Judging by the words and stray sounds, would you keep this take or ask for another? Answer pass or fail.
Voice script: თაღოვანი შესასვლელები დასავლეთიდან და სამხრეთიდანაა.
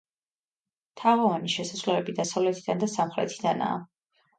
pass